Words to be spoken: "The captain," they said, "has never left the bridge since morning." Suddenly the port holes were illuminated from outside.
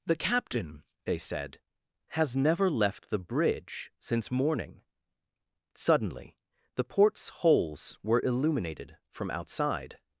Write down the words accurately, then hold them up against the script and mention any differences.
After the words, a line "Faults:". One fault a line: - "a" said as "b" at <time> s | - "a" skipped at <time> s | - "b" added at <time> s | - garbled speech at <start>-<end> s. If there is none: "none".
"The captain," they said, "has never left the bridge since morning." Suddenly the ports holes were illuminated from outside.
Faults:
- "port" said as "ports" at 6.8 s